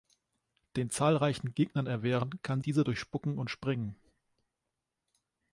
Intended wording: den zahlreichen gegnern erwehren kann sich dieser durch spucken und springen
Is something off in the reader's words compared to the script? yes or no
yes